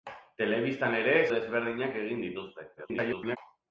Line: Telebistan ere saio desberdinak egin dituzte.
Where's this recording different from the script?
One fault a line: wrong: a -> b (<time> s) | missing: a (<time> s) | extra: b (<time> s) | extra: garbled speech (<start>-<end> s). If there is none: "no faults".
missing: saio (1.1 s)
extra: garbled speech (2.8-3.4 s)